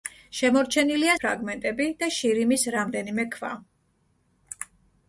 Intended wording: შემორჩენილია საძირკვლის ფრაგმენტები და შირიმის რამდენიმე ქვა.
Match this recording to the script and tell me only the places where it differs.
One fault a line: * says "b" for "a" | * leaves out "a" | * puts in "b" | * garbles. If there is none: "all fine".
* leaves out "საძირკვლის"